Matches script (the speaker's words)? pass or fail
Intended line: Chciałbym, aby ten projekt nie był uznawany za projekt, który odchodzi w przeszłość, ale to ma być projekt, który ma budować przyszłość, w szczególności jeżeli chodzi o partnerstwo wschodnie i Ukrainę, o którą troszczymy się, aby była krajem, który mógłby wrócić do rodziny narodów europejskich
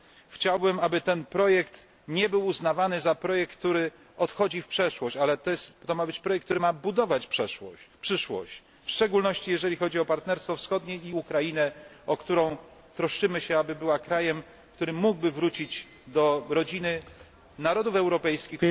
pass